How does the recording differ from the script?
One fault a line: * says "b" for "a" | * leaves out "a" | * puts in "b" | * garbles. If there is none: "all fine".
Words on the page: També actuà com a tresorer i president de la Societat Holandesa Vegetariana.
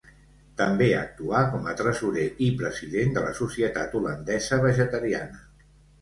all fine